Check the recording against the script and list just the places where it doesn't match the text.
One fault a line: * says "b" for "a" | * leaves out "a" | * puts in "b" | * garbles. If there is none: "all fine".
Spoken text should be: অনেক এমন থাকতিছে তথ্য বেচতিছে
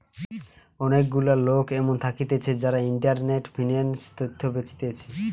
* puts in "গুলা লোক"
* puts in "যারা ইন্টারনেটে ফিন্যান্স"